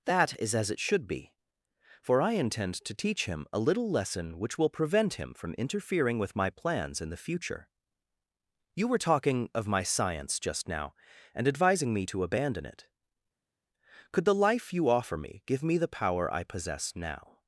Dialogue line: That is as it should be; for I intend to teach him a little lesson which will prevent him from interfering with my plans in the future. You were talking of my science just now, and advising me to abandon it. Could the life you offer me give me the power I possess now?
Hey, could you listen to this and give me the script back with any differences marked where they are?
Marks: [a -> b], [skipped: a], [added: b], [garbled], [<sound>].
That is as it should be; for I intend to teach him a little lesson which will prevent him from interfering with my plans in the future. You were talking of my science just now, and advising me to abandon it. Could the life you offer me give me the power I possess now?